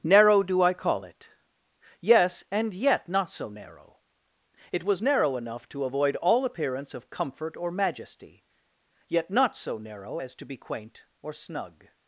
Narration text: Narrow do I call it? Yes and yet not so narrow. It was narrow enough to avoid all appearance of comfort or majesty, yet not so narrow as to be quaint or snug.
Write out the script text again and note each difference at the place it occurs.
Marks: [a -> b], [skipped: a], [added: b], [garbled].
Narrow do I call it? Yes and yet not so narrow. It was narrow enough to avoid all appearance of comfort or majesty, yet not so narrow as to be quaint or snug.